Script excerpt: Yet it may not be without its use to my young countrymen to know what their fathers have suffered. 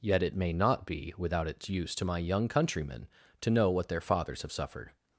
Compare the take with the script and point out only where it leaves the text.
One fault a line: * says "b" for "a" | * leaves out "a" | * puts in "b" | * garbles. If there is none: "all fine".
all fine